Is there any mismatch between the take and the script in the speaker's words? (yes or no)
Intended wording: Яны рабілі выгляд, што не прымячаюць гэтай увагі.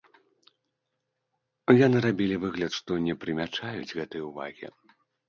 no